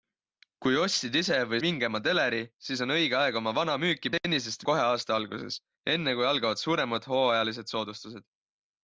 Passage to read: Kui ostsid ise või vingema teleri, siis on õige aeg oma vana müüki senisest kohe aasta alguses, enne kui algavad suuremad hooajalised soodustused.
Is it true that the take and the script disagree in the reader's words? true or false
false